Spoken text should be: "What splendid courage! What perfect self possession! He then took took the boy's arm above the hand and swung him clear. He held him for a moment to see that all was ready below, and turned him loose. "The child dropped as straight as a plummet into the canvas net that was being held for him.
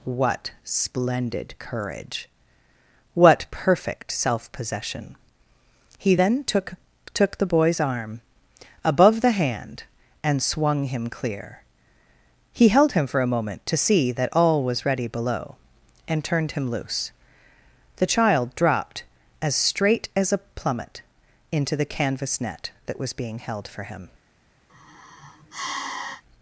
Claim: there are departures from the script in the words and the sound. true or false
true